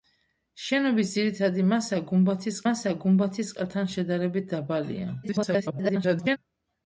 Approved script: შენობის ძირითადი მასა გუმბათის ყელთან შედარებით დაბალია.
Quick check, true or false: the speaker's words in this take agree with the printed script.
false